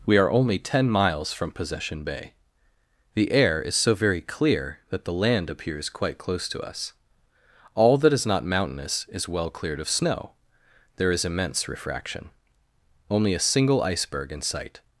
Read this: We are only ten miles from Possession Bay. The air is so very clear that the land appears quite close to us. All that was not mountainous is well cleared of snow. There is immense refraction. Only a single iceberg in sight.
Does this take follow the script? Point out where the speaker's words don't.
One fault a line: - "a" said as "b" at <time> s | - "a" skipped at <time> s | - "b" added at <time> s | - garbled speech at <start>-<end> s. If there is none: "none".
- "was" said as "is" at 8.1 s